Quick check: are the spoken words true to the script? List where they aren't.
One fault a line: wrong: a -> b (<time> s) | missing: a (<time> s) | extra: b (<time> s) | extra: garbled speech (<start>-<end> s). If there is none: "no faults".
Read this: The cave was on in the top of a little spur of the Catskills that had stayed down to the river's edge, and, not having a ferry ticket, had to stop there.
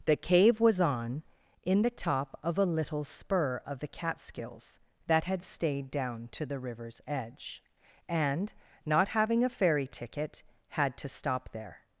no faults